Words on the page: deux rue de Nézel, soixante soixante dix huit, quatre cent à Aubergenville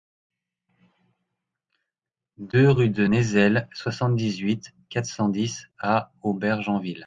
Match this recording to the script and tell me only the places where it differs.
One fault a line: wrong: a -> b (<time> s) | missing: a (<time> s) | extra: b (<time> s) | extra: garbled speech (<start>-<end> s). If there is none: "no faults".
missing: soixante (4.1 s)
extra: dix (5.3 s)